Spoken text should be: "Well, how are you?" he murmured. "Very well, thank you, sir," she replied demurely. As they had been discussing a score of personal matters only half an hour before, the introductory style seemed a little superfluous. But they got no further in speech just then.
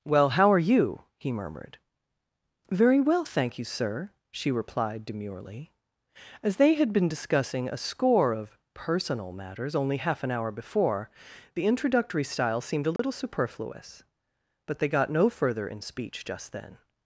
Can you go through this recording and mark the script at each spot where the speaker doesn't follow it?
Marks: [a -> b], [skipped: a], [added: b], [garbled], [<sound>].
"Well, how are you?" he murmured. "Very well, thank you, sir," she replied demurely. As they had been discussing a score of personal matters only half an hour before, the introductory style seemed a little [dropout] superfluous. But they got no further in speech just then.